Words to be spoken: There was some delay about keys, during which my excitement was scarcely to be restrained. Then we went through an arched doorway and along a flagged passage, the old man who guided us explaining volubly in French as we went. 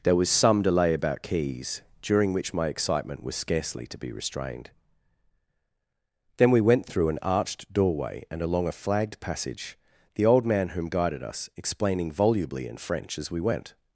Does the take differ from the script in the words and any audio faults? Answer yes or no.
yes